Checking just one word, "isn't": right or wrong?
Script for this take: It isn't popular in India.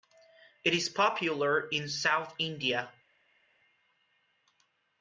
wrong